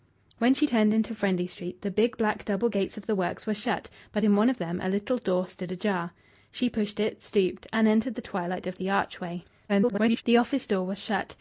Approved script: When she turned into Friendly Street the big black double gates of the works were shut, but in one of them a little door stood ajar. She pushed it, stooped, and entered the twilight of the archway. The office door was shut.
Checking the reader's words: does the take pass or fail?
fail